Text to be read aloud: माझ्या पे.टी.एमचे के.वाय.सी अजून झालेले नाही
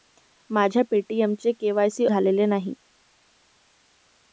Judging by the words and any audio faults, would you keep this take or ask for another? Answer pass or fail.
fail